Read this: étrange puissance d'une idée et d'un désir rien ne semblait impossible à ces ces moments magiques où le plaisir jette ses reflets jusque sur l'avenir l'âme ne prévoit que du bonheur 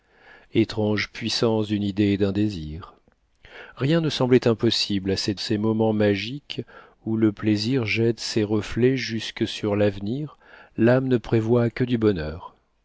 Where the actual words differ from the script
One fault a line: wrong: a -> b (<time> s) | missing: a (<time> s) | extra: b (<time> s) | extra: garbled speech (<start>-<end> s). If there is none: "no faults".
no faults